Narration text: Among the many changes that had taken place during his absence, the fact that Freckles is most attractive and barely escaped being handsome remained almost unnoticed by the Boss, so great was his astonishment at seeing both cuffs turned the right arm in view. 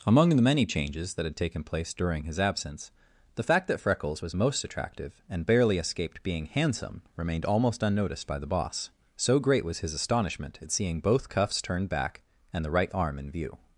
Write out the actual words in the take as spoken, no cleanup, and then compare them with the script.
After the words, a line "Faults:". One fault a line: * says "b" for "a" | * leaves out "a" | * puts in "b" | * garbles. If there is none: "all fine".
Among the many changes that had taken place during his absence, the fact that Freckles was most attractive and barely escaped being handsome remained almost unnoticed by the Boss, so great was his astonishment at seeing both cuffs turned back and the right arm in view.
Faults:
* says "was" for "is"
* puts in "back and"